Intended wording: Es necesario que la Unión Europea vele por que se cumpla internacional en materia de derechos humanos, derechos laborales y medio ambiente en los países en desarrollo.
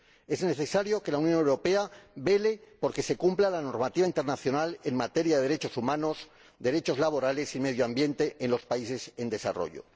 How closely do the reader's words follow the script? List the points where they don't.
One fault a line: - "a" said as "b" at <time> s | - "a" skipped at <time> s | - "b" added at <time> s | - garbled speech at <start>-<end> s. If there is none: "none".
- "la normativa" added at 3.5 s